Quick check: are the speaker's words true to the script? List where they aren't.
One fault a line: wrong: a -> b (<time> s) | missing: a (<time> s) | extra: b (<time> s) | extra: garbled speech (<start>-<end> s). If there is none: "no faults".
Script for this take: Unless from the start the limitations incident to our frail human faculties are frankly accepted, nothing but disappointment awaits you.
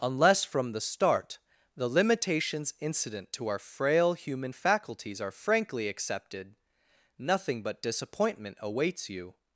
no faults